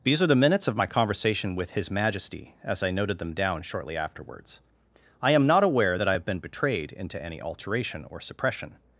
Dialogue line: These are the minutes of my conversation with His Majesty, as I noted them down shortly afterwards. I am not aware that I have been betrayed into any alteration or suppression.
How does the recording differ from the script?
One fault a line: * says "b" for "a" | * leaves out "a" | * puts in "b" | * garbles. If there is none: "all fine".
all fine